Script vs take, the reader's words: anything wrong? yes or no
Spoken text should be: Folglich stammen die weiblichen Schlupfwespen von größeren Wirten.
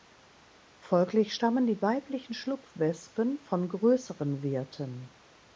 no